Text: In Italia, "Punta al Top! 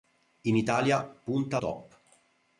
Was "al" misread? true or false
true